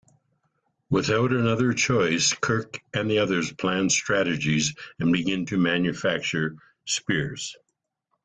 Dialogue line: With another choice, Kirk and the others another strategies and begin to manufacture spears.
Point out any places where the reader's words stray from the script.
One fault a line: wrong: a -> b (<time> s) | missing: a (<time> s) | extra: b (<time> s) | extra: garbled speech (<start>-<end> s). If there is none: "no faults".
wrong: With -> Without (0.9 s)
wrong: another -> plan (3.5 s)